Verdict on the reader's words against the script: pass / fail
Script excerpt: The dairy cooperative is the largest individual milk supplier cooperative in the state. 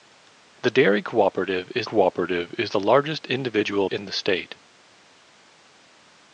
fail